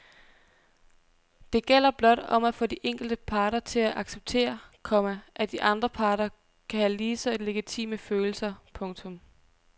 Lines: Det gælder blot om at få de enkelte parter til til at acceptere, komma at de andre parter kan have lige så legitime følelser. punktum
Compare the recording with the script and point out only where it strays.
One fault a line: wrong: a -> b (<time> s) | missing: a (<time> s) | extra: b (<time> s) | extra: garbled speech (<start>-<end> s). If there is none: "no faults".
missing: til (3.8 s)